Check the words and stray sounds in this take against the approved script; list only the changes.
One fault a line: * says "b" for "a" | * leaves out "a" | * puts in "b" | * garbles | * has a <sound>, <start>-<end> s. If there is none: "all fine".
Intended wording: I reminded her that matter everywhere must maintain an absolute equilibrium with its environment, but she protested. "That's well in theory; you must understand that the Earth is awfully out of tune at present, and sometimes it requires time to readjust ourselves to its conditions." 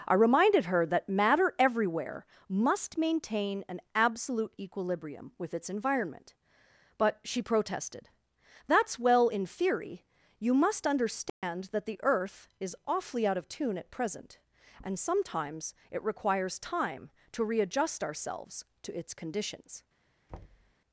* has a dropout, 11.3-11.4 s
* has a thud, 20.3-20.7 s